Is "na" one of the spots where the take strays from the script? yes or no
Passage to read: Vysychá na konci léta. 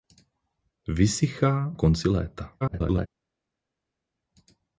yes